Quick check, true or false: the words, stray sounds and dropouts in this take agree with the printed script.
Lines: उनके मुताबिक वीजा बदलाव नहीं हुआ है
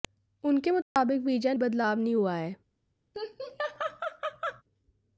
false